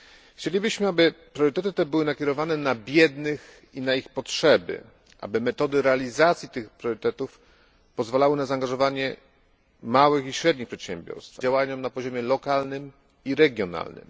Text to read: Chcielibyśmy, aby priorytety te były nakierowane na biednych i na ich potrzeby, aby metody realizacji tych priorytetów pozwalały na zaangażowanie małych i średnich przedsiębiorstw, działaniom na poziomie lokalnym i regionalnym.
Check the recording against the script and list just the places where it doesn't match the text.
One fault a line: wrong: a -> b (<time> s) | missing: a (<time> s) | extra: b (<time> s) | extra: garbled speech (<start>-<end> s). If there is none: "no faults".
no faults